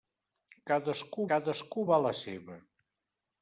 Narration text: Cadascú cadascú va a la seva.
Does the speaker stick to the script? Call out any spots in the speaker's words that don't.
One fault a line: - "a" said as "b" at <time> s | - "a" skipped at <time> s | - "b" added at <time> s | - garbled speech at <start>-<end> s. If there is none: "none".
none